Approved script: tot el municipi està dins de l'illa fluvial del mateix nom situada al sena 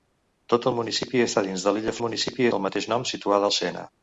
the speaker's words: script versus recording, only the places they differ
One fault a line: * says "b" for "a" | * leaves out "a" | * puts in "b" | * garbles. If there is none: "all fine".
* says "municipi" for "fluvial"